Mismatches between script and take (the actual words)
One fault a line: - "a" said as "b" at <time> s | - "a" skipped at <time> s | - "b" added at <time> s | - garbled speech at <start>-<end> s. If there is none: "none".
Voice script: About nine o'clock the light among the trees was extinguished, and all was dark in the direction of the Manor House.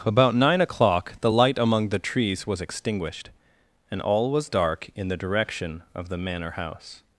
none